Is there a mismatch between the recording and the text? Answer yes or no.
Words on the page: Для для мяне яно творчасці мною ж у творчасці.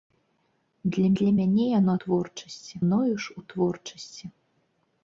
no